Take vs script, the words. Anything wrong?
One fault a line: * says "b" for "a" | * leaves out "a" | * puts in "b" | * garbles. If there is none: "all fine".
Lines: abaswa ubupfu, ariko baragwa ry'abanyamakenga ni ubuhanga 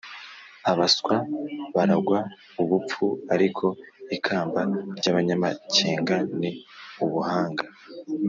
* puts in "baragwa"
* says "ikamba" for "baragwa"